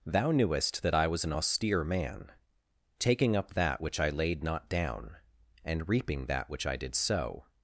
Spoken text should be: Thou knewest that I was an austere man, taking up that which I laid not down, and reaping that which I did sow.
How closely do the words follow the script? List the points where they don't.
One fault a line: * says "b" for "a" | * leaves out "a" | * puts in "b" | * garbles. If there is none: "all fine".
all fine